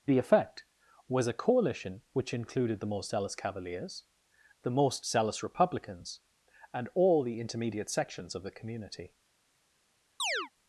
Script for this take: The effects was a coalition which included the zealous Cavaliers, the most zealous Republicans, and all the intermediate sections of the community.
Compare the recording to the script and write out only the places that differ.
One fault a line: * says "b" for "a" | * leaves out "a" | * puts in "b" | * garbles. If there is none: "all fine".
* says "effect" for "effects"
* puts in "most"